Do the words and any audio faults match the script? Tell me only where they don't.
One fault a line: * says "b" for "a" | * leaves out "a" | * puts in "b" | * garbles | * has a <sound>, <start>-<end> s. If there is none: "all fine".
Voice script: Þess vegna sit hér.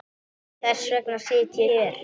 all fine